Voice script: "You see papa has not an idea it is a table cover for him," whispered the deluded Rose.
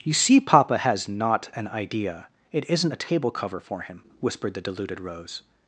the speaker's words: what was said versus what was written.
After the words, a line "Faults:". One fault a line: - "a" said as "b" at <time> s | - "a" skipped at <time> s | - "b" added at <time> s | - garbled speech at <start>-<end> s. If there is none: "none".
"You see papa has not an idea it isn't a table cover for him," whispered the deluded Rose.
Faults:
- "is" said as "isn't" at 2.7 s